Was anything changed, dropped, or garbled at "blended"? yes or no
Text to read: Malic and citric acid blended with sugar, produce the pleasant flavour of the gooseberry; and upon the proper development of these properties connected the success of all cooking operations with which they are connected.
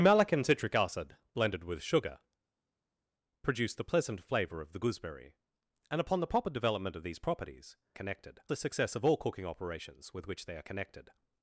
no